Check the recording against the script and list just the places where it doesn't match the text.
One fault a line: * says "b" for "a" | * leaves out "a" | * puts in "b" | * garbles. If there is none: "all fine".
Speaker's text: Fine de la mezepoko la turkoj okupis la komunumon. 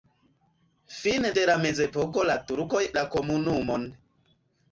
* leaves out "okupis"